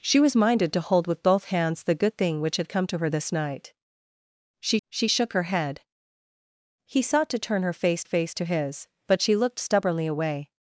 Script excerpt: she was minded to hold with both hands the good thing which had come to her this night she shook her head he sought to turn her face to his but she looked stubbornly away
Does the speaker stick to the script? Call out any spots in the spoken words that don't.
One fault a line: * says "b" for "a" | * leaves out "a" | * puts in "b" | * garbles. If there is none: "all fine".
* puts in "she"
* puts in "face"